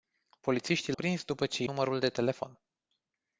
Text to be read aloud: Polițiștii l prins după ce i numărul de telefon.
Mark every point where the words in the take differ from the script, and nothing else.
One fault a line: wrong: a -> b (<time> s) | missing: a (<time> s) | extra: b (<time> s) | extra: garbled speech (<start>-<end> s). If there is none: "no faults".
no faults